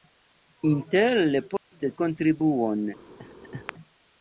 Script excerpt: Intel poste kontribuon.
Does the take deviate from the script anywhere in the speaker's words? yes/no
no